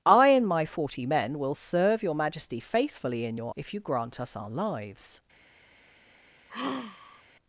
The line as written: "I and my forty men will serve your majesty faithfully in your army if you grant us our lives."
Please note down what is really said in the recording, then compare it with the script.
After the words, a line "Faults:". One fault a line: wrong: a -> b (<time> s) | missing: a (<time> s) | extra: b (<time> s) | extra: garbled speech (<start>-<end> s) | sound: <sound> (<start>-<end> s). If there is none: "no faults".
"I and my forty men will serve your majesty faithfully in your if you grant us our lives."
Faults:
missing: army (3.5 s)
sound: sigh (6.5-7.2 s)